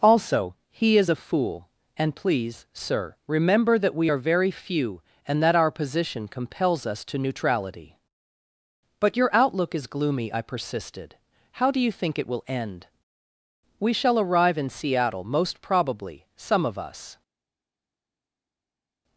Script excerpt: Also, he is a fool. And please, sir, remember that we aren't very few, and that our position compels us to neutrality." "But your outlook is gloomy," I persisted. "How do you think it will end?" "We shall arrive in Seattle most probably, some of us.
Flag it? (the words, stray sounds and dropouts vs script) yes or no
yes